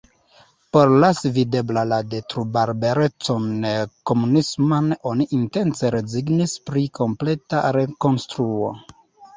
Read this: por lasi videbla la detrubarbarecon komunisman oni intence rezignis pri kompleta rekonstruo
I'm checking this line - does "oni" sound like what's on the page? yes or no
yes